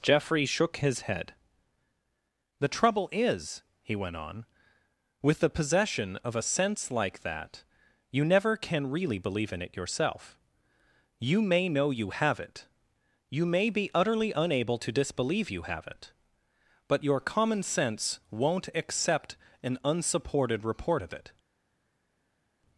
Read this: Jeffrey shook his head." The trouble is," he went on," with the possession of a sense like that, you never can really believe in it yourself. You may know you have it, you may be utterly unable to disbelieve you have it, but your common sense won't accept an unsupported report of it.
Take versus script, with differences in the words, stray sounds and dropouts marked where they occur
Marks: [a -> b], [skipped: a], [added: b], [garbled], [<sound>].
Jeffrey shook his head." The trouble is," he went on," with the possession of a sense like that, you never can really believe in it yourself. You may know you have it, you may be utterly unable to disbelieve you have it, but your common sense won't accept an unsupported report of it.